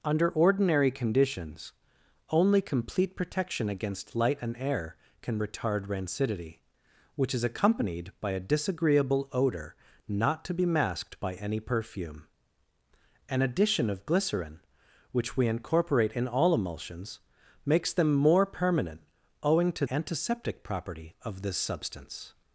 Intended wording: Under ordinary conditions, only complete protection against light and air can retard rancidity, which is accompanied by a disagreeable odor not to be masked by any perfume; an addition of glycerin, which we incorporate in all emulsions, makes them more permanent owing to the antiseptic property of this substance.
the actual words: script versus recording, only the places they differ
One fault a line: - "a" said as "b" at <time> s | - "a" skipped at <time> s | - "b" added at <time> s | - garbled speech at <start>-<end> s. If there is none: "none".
- "the" skipped at 19.8 s